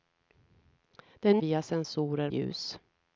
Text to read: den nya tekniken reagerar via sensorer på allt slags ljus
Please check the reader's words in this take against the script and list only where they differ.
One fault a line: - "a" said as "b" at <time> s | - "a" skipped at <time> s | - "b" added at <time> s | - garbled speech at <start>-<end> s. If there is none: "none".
- "nya tekniken reagerar" skipped at 1.4 s
- "på allt slags" skipped at 2.3 s